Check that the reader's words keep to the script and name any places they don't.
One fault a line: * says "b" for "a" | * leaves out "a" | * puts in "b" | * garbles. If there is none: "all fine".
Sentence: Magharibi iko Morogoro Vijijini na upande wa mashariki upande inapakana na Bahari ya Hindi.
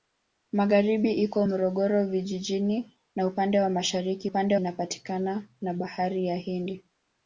all fine